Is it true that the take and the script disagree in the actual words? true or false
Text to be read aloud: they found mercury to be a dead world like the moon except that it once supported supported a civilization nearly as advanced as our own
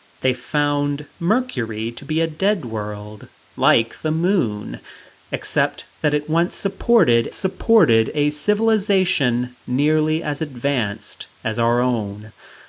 false